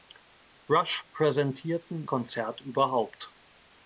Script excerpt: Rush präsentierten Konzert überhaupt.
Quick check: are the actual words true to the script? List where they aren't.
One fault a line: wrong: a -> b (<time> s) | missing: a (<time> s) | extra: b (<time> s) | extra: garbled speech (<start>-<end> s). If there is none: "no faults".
no faults